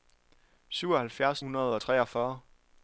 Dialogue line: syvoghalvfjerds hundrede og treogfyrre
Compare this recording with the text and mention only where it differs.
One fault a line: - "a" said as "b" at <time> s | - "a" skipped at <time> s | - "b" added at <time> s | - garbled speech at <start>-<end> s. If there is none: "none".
none